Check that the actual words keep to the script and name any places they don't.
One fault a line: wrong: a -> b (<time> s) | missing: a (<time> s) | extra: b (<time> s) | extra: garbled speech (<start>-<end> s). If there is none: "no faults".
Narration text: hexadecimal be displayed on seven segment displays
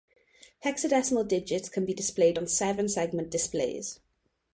extra: digits can (1.3 s)